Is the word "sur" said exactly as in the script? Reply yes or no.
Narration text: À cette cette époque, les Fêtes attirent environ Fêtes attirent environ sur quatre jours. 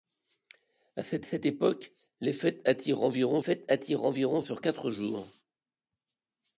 yes